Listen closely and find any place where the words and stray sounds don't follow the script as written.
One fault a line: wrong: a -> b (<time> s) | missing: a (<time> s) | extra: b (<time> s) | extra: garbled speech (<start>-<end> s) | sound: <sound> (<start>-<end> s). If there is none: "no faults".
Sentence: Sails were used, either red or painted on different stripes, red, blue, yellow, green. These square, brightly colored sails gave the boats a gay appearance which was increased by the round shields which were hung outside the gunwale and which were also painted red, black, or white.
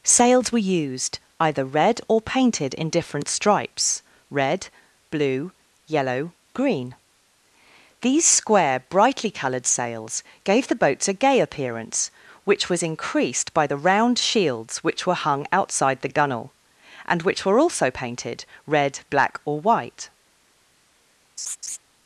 wrong: on -> in (2.7 s)
sound: laugh (21.4-21.8 s)